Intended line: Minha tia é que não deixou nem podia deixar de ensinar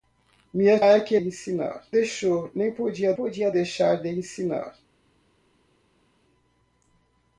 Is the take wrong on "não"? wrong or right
wrong